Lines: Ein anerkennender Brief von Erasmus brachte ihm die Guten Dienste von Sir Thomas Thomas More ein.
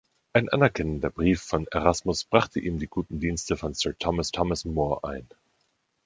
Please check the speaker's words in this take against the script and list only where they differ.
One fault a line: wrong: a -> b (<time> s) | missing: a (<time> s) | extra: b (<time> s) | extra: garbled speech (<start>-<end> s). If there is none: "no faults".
no faults